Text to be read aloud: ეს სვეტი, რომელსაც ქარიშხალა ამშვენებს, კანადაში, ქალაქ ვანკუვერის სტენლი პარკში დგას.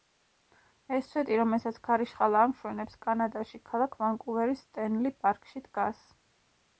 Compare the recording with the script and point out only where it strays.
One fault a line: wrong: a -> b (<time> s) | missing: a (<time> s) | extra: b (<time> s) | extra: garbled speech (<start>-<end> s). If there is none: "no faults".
no faults